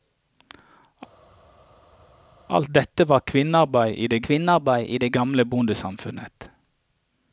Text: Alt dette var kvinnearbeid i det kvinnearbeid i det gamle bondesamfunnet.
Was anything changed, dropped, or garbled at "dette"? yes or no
no